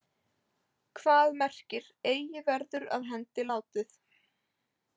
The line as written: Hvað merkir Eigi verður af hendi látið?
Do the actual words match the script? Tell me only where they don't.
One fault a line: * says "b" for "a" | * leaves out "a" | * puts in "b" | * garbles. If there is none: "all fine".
all fine